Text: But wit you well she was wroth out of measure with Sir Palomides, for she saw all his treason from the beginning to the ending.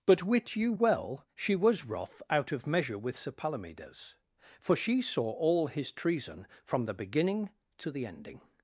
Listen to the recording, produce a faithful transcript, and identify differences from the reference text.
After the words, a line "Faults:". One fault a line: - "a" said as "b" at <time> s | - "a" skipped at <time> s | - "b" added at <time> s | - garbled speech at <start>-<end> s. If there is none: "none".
But wit you well she was wroth out of measure with Sir Palomides, for she saw all his treason from the beginning to the ending.
Faults:
none